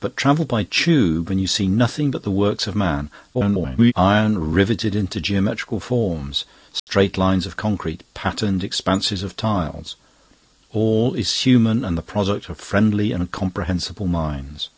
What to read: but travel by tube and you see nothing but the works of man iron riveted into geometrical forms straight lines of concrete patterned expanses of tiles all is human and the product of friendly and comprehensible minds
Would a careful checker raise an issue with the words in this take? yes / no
yes